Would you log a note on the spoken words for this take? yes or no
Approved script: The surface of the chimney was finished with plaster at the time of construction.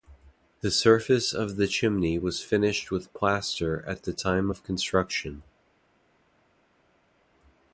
no